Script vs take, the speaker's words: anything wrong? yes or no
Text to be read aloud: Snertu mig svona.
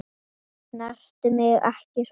yes